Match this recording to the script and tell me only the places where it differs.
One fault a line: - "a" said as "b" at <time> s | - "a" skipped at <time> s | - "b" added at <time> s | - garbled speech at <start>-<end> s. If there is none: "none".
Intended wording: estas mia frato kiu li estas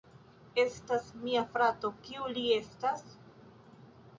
none